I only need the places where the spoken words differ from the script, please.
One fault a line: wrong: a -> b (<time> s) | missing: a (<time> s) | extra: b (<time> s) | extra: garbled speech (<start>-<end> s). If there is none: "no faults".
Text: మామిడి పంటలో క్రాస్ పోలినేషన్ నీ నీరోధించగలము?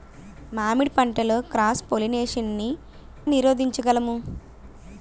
no faults